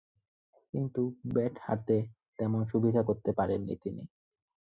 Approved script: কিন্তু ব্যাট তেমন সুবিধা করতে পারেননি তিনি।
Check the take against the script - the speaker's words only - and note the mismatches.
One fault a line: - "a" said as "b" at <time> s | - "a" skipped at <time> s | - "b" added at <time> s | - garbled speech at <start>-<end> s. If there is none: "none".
- "হাতে" added at 1.6 s